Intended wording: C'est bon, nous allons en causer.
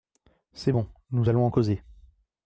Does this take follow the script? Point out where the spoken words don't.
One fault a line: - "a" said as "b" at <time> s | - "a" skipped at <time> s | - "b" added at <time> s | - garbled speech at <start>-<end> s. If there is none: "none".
none